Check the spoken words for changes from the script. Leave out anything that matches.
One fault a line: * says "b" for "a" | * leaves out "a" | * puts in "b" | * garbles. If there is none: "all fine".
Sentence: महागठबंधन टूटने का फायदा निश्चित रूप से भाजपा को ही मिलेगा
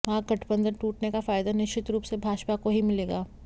all fine